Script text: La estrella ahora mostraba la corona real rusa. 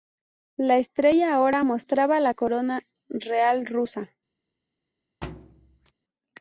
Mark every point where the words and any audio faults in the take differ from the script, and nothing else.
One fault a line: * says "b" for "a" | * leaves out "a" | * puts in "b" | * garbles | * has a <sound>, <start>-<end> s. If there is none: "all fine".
* has a thud, 5.2-5.9 s